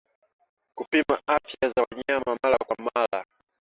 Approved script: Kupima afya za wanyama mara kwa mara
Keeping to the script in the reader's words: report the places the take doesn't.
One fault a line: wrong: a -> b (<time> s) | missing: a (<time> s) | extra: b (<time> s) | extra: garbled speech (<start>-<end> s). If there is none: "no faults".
no faults